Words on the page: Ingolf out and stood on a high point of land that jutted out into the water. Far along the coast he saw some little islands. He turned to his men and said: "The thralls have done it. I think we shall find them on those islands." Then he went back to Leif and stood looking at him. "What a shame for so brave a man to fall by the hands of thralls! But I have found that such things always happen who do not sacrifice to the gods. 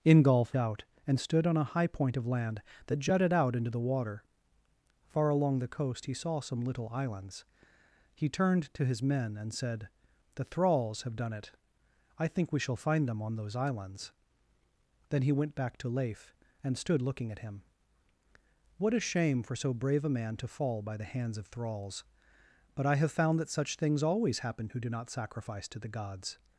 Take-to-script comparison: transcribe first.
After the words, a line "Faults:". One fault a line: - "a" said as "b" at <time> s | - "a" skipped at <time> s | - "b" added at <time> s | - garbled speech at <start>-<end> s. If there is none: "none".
Ingolf out and stood on a high point of land that jutted out into the water. Far along the coast he saw some little islands. He turned to his men and said: "The thralls have done it. I think we shall find them on those islands." Then he went back to Leif and stood looking at him. "What a shame for so brave a man to fall by the hands of thralls! But I have found that such things always happen who do not sacrifice to the gods.
Faults:
none